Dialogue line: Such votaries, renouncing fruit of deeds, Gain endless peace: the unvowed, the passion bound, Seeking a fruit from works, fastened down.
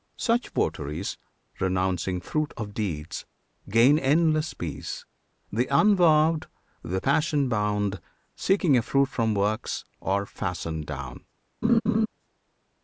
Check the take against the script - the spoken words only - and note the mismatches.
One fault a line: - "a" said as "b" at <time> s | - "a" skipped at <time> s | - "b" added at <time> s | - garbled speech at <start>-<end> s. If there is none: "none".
- "are" added at 10.0 s